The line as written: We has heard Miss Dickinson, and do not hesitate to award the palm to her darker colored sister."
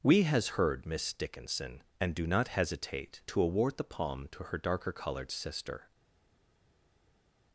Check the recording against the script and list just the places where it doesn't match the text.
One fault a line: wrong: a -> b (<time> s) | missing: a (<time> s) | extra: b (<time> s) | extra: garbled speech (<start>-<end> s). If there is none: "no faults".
no faults